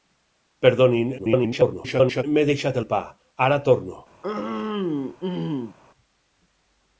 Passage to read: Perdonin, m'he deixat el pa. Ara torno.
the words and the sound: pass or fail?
fail